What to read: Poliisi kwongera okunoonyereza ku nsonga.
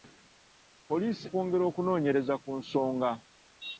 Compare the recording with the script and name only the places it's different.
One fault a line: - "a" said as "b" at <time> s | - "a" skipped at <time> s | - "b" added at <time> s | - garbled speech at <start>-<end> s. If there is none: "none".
none